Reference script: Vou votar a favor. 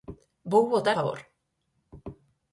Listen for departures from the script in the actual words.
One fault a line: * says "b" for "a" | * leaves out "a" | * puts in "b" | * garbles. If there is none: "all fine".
* leaves out "a"